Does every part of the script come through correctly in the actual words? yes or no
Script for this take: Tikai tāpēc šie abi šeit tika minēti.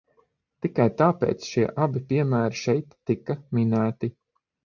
no